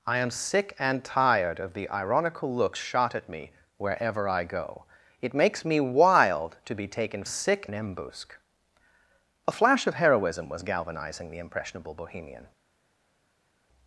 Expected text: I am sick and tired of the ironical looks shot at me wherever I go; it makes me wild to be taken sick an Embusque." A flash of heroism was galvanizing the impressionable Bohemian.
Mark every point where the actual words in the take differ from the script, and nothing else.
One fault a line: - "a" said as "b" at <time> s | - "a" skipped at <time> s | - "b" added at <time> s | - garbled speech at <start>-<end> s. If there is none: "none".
none